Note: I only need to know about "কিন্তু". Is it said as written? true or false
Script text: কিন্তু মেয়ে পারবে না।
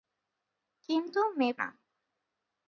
true